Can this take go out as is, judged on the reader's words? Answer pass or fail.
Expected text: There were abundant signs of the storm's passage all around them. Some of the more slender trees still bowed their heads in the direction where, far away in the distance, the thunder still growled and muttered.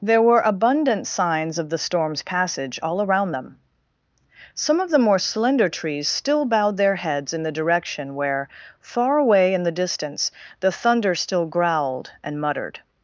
pass